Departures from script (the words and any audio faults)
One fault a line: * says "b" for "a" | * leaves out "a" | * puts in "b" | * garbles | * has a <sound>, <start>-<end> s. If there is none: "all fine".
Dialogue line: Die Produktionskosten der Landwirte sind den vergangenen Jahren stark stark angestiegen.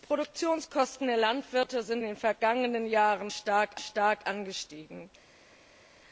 all fine